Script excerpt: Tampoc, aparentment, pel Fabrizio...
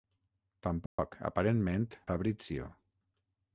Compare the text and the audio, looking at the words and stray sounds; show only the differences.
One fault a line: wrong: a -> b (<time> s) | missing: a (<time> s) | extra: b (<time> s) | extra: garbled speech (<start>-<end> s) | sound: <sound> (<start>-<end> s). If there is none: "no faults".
sound: dropout (0.9-1.0 s)
missing: pel (1.9 s)